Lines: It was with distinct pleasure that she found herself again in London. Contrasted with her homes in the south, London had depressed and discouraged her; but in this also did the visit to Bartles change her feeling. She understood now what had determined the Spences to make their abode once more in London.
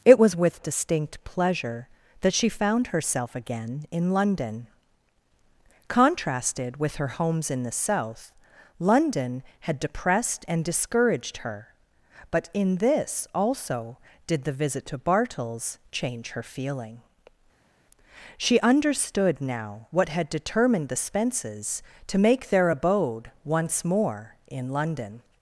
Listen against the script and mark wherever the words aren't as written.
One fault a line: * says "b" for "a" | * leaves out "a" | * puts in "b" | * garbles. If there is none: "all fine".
all fine